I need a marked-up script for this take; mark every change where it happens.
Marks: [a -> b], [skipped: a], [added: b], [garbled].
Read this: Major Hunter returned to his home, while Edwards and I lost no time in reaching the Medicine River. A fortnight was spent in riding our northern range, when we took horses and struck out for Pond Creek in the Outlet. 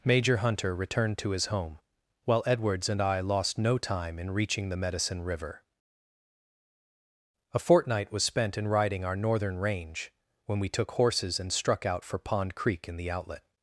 Major Hunter returned to his home, while Edwards and I lost no time in reaching the Medicine River. A fortnight was spent in riding our northern range, when we took horses and struck out for Pond Creek in the Outlet.